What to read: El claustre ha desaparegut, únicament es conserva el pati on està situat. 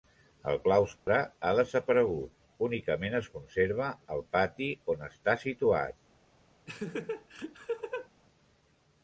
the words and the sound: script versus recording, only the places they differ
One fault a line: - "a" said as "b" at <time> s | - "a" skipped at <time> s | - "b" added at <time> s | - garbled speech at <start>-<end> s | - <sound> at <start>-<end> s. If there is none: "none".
- dropout at 1.0-1.1 s
- laugh at 6.7-8.1 s